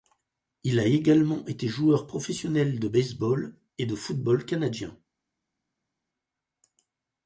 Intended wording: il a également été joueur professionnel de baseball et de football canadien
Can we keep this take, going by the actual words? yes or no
yes